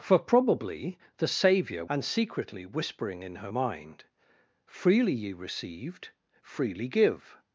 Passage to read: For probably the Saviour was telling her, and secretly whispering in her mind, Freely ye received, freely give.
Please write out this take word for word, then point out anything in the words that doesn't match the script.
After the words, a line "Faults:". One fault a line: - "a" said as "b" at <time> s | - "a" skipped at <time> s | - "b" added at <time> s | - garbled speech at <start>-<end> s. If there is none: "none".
For probably the Saviour and secretly whispering in her mind, Freely ye received, freely give.
Faults:
- "was telling her" skipped at 1.9 s